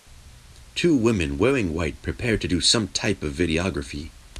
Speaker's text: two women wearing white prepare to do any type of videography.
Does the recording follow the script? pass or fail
fail